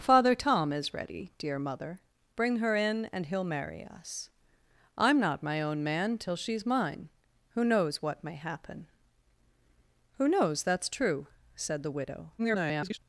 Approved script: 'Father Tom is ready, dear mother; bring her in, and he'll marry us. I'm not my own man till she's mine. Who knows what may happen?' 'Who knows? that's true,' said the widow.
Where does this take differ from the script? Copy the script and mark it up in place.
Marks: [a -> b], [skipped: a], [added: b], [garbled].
'Father Tom is ready, dear mother; bring her in, and he'll marry us. I'm not my own man till she's mine. Who knows what may happen?' 'Who knows? that's true,' said the widow. [garbled]